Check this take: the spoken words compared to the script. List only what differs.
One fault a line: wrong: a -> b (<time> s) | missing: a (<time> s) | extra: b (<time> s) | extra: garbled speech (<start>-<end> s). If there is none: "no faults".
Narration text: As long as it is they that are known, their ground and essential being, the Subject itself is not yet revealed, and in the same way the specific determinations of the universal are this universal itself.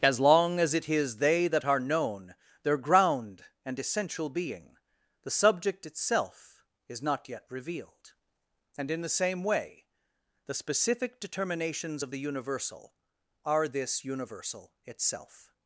no faults